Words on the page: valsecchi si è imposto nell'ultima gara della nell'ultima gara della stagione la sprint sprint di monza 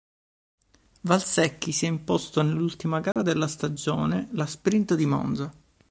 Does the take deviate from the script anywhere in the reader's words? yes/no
yes